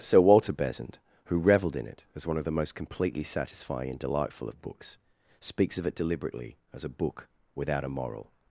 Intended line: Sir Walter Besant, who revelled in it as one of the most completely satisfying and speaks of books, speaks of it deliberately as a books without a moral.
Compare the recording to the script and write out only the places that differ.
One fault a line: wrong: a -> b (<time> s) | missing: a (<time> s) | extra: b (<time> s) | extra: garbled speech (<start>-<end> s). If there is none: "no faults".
wrong: speaks -> delightful (4.0 s)
wrong: books -> book (6.9 s)